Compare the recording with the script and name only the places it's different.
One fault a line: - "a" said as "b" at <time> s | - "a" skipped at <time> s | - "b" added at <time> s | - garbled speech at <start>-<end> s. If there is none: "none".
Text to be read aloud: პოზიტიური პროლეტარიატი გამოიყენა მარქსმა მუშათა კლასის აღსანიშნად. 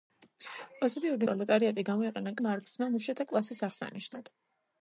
none